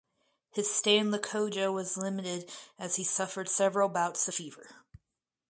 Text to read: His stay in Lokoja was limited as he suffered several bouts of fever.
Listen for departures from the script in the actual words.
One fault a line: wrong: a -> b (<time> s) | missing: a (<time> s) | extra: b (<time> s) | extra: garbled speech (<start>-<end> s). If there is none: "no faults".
no faults